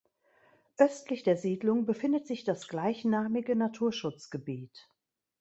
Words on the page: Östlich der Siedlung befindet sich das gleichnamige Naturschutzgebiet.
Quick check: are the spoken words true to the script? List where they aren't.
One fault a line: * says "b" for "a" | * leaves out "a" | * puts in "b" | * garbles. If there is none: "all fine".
all fine